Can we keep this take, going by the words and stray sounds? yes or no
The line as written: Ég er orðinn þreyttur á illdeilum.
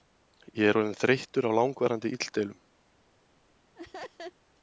no